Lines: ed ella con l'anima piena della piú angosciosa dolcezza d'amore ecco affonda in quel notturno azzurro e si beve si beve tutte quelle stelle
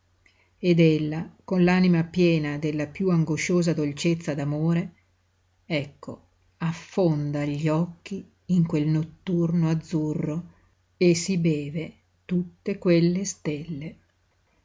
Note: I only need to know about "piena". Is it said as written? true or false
true